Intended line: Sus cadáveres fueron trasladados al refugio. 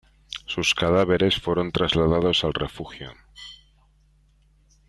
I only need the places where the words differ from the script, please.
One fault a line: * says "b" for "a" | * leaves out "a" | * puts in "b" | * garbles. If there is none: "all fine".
all fine